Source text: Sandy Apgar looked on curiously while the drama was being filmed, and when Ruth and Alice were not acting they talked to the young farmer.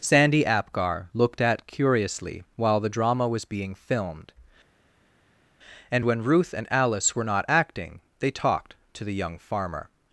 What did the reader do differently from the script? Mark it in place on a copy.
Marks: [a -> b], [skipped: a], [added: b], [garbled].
Sandy Apgar looked [on -> at] curiously while the drama was being filmed, and when Ruth and Alice were not acting they talked to the young farmer.